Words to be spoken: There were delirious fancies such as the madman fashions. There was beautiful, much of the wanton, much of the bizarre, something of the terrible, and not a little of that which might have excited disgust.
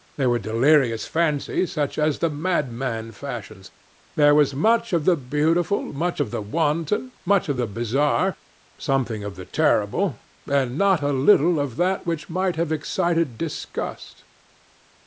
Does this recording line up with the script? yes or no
no